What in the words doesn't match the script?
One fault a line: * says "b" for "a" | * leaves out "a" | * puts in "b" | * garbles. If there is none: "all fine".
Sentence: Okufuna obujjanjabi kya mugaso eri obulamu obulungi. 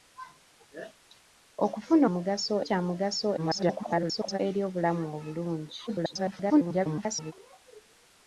* says "mugaso" for "obujjanjabi"
* garbles
* garbles